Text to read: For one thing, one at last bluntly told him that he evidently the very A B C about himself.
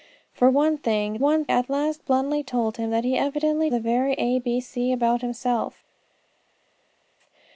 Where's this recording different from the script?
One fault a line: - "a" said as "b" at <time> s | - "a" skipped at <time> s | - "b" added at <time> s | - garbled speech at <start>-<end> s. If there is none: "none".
none